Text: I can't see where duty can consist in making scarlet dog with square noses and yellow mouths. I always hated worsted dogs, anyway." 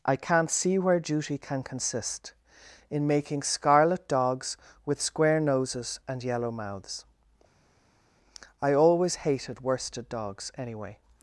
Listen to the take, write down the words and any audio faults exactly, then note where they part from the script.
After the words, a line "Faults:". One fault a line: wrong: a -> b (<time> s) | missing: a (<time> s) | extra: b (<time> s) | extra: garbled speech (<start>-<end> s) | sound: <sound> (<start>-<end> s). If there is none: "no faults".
I can't see where duty can consist in making scarlet dogs with square noses and yellow mouths. I always hated worsted dogs, anyway."
Faults:
wrong: dog -> dogs (4.1 s)